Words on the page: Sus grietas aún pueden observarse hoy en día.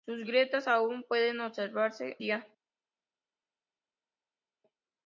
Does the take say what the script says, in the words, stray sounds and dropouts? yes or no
no